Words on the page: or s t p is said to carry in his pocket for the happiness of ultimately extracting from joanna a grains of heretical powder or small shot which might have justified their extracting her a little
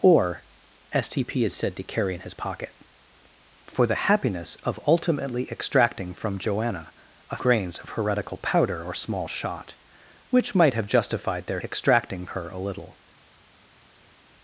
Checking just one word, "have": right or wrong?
right